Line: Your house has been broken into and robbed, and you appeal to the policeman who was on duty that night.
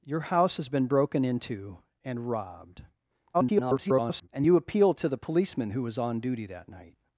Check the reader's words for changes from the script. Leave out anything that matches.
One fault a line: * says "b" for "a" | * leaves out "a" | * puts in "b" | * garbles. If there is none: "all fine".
* garbles